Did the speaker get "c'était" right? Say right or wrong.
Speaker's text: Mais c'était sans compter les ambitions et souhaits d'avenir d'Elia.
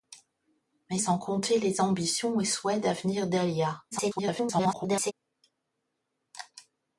wrong